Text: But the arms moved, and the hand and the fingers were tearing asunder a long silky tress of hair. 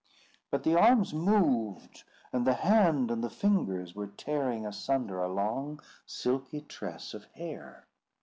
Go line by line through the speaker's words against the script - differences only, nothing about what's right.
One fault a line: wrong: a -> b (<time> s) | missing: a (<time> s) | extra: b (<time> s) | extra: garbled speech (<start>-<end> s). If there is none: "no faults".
no faults